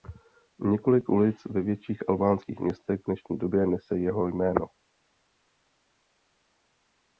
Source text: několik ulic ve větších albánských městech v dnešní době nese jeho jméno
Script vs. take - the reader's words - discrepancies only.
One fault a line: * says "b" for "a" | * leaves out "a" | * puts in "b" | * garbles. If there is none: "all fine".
all fine